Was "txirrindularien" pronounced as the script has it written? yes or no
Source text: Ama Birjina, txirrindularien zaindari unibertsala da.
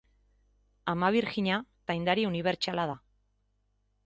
no